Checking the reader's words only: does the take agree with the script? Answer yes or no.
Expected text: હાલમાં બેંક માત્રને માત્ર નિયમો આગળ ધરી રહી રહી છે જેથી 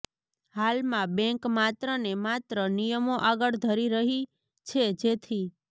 no